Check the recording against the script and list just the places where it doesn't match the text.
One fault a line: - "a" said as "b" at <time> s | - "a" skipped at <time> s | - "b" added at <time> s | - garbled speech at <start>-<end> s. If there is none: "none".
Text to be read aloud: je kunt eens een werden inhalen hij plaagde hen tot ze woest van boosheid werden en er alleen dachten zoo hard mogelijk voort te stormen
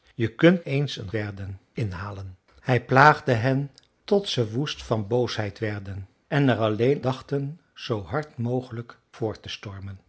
none